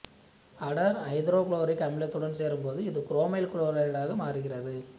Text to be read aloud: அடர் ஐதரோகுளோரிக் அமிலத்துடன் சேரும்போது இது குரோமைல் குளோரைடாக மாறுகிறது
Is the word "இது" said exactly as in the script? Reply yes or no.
yes